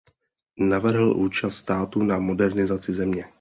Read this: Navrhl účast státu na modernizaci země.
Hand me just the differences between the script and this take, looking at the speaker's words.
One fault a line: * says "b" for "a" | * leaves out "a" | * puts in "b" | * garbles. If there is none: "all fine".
all fine